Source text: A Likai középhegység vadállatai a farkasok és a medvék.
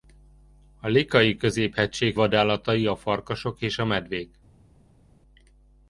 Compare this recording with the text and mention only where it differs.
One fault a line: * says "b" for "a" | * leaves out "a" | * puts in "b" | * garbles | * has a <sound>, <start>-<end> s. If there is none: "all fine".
all fine